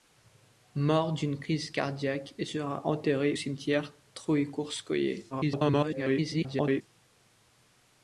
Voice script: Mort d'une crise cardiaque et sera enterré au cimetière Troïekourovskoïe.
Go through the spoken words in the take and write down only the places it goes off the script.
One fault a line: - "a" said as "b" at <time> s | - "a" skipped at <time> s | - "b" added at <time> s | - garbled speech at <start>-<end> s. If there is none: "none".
- "au" skipped at 3.4 s
- garbled speech at 5.3-6.8 s